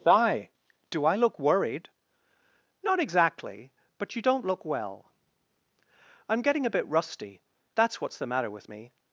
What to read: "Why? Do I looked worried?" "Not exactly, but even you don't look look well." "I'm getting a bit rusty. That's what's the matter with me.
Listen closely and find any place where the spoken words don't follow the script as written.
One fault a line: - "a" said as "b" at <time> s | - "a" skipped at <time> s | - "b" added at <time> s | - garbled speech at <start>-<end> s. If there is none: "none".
- "looked" said as "look" at 1.1 s
- "even" skipped at 4.2 s
- "look" skipped at 4.7 s